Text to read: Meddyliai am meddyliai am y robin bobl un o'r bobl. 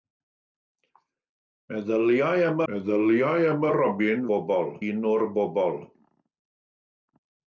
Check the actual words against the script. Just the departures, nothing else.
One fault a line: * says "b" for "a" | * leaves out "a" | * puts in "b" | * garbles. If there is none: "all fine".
all fine